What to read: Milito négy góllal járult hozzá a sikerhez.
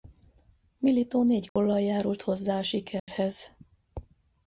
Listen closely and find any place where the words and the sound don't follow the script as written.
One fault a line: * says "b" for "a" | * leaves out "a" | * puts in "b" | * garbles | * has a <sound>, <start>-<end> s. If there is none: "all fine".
* has a dropout, 1.5-1.6 s
* has a dropout, 3.0-3.1 s